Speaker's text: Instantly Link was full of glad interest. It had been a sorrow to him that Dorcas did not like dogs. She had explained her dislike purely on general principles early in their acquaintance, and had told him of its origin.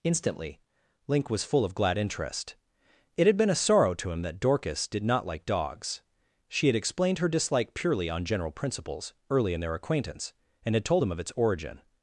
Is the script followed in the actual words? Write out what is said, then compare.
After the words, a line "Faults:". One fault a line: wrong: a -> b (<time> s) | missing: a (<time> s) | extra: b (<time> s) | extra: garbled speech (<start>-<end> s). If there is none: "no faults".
Instantly Link was full of glad interest. It had been a sorrow to him that Dorcas did not like dogs. She had explained her dislike purely on general principles early in their acquaintance, and had told him of its origin.
Faults:
no faults